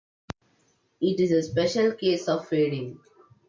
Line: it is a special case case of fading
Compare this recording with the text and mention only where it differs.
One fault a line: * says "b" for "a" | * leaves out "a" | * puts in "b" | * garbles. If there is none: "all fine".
* leaves out "case"